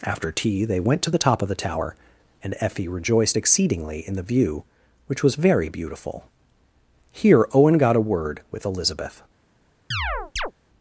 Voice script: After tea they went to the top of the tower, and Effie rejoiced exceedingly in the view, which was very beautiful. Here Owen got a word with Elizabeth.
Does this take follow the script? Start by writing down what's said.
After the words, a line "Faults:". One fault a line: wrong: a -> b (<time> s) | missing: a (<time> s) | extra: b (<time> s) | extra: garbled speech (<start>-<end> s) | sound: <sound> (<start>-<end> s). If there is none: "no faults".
After tea they went to the top of the tower, and Effie rejoiced exceedingly in the view, which was very beautiful. Here Owen got a word with Elizabeth.
Faults:
sound: chirp (9.9-10.5 s)